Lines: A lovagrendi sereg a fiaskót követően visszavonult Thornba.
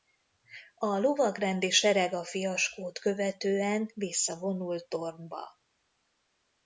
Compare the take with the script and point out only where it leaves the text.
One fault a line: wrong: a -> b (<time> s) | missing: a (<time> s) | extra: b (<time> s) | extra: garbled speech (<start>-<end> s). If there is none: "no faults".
no faults